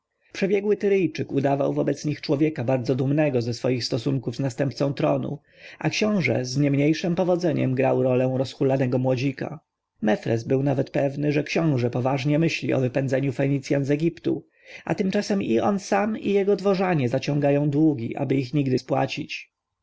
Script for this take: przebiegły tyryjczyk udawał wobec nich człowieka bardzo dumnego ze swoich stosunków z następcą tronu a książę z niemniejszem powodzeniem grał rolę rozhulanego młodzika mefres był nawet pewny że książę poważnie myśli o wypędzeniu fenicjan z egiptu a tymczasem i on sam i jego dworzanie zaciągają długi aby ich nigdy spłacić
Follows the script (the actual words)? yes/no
yes